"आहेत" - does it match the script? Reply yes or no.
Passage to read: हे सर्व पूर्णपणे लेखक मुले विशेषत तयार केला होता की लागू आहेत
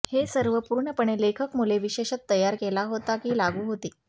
no